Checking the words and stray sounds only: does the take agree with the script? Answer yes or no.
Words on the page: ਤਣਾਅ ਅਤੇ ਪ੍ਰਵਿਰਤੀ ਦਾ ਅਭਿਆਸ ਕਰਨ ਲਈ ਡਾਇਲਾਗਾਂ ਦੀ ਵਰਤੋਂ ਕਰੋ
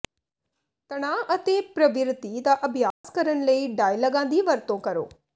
no